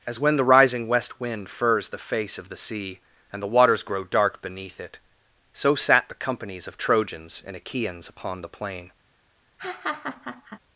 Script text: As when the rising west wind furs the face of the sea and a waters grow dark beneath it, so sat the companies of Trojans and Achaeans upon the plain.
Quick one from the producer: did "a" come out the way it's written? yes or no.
no